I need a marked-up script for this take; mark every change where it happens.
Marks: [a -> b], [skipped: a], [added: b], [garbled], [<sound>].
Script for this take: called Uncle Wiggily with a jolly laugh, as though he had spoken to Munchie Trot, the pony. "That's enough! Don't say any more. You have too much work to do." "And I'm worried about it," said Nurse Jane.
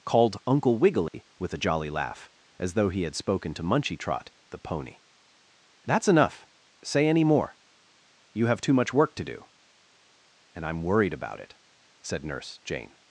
called Uncle Wiggily [dropout] with a jolly laugh, as though he had spoken to Munchie Trot, the pony. "That's enough! [skipped: Don't] say any more. You have too much work to do." "And I'm worried about it," said Nurse Jane.